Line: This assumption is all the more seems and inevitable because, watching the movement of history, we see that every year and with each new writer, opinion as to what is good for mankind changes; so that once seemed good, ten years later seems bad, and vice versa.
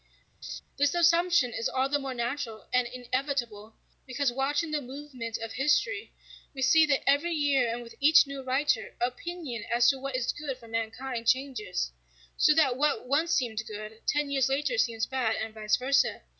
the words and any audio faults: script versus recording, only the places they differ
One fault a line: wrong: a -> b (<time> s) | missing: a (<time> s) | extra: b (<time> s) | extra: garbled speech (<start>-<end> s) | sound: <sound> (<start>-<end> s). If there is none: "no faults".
sound: laugh (0.4-0.6 s)
wrong: seems -> natural (2.1 s)
extra: what (12.8 s)